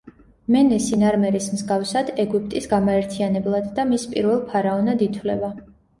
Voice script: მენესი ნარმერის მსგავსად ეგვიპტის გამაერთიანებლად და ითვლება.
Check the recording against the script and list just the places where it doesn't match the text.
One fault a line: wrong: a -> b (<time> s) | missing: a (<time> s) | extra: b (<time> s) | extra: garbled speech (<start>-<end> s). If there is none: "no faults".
extra: მის პირველ ფარაონად (3.9 s)